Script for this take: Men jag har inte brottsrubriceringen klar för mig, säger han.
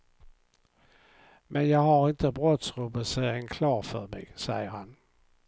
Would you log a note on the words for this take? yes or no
no